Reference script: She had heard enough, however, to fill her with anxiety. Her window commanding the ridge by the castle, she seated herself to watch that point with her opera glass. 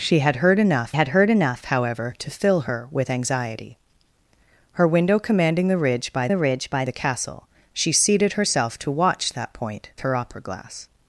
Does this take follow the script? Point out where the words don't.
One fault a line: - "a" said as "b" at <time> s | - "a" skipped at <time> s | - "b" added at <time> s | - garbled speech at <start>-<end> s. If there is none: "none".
- "had heard enough" added at 0.9 s
- "ridge by the" added at 6.4 s
- "with" skipped at 9.9 s